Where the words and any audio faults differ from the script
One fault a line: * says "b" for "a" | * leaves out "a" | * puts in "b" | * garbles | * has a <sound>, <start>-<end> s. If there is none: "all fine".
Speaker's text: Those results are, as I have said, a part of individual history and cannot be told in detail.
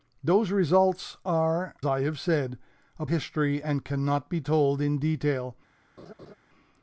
* leaves out "as"
* leaves out "part of individual"
* has a laugh, 6.0-6.3 s